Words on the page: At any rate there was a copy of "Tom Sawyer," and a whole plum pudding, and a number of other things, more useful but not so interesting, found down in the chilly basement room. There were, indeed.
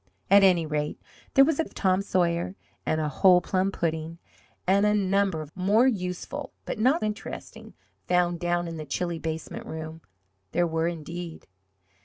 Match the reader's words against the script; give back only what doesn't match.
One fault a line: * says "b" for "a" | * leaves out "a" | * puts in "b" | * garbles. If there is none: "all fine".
* leaves out "copy"
* leaves out "other things"
* leaves out "so"